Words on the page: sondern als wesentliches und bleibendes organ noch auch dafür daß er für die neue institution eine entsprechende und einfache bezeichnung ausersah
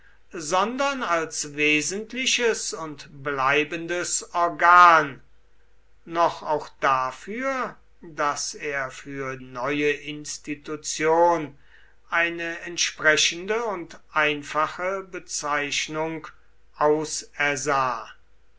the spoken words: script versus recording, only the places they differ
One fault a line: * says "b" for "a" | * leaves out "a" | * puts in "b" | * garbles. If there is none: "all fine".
* leaves out "die"